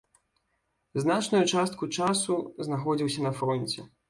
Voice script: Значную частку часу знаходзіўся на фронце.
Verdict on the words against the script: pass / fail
pass